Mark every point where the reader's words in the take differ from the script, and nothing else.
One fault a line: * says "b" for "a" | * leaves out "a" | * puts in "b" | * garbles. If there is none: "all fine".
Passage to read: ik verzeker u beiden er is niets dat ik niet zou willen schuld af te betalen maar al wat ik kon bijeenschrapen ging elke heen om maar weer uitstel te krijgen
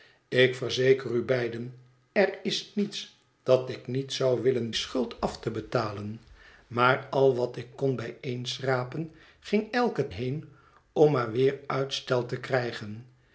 all fine